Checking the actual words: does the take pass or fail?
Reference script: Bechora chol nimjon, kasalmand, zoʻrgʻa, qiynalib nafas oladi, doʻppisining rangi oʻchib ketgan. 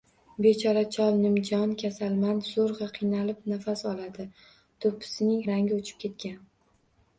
pass